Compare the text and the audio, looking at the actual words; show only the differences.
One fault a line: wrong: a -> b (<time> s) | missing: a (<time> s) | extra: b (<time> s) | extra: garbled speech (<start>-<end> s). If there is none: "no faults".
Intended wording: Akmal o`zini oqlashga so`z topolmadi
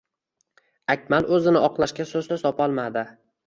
extra: so`z (2.3 s)